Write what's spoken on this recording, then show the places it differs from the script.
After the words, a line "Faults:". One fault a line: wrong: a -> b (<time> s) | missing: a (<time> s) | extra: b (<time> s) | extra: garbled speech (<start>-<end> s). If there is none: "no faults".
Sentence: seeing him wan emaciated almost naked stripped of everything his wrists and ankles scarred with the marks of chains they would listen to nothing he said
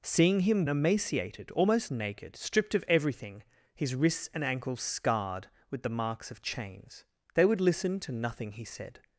seeing him emaciated almost naked stripped of everything his wrists and ankles scarred with the marks of chains they would listen to nothing he said
Faults:
missing: wan (0.7 s)